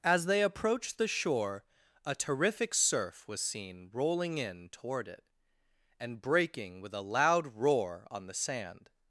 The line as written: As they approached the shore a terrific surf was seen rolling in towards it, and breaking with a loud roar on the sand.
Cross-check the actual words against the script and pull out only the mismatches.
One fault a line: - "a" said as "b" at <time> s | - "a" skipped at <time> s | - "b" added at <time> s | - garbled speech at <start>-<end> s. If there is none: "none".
- "towards" said as "toward" at 4.7 s